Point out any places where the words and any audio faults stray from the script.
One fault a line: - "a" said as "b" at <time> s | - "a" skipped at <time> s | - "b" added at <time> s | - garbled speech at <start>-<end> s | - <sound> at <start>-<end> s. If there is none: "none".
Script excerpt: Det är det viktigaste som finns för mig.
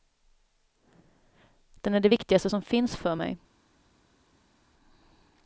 - "Det" said as "Den" at 1.8 s